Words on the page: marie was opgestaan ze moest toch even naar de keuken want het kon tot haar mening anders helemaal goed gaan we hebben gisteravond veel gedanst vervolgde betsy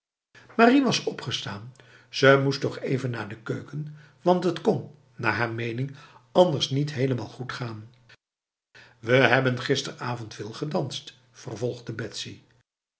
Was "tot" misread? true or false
true